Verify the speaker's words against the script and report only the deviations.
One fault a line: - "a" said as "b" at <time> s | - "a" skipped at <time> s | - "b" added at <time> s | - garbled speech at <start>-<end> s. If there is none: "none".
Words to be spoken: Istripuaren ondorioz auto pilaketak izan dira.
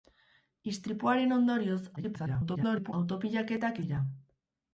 - garbled speech at 2.0-2.9 s
- "izan" skipped at 3.8 s